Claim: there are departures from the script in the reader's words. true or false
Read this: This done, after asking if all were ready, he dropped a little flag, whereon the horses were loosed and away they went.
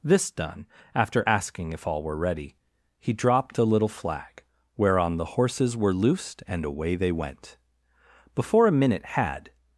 true